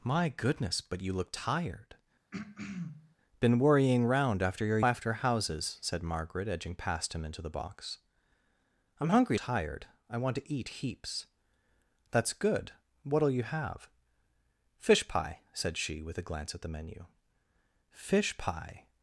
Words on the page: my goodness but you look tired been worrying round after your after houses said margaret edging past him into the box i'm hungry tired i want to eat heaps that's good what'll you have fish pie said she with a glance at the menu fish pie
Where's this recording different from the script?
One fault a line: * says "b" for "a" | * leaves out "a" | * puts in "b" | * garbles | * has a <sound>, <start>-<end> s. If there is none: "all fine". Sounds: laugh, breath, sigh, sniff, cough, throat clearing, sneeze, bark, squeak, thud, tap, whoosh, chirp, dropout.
* has a throat clearing, 2.3-3.2 s